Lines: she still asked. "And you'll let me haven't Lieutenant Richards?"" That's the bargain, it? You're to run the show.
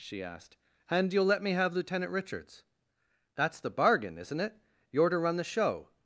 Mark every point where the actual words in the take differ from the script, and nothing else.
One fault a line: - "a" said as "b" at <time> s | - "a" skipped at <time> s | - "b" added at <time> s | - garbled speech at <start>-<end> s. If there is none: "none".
- "still" skipped at 0.2 s
- "haven't" said as "have" at 1.5 s
- "isn't" added at 4.2 s